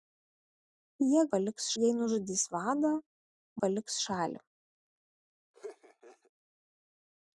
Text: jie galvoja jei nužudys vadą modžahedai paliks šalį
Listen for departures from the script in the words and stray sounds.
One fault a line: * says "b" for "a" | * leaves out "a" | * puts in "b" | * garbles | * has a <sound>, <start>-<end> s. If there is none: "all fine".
* says "paliks" for "galvoja"
* leaves out "modžahedai"
* has a laugh, 5.5-6.3 s